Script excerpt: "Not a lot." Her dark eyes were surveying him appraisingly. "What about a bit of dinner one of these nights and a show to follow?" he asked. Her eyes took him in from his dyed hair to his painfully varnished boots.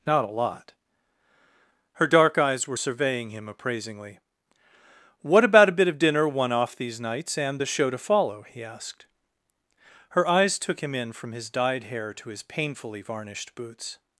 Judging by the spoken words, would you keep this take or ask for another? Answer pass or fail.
fail